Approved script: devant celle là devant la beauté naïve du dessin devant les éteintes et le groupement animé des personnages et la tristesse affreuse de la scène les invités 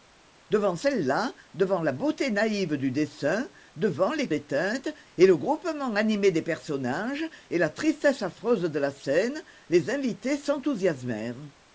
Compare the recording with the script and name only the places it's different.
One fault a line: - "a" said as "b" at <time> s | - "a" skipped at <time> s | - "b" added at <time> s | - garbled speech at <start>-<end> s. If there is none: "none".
none